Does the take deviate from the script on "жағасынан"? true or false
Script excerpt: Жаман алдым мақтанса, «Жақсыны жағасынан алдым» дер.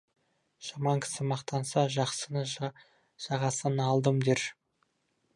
false